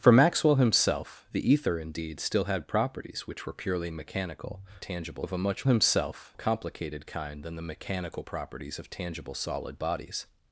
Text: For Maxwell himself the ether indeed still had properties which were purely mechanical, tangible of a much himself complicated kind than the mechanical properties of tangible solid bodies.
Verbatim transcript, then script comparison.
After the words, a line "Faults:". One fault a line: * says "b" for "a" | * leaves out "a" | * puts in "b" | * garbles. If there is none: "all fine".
For Maxwell himself the ether indeed still had properties which were purely mechanical, tangible of a much himself complicated kind than the mechanical properties of tangible solid bodies.
Faults:
all fine